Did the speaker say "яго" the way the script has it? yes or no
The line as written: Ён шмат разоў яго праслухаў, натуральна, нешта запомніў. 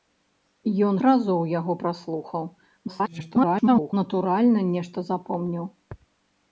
yes